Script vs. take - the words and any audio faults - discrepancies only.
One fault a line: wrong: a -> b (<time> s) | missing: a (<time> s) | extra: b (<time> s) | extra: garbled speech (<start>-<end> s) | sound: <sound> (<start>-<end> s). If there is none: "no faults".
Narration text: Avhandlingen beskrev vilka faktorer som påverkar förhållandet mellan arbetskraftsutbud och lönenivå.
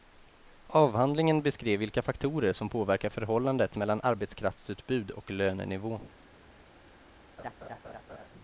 sound: laugh (7.4-8.3 s)